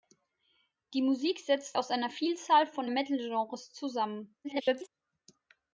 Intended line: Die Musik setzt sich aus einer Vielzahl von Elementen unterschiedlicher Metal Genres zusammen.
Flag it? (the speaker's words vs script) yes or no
yes